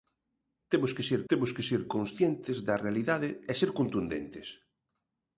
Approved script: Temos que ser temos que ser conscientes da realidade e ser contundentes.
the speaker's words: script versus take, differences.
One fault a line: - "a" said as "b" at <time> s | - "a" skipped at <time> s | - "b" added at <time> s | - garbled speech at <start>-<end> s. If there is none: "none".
none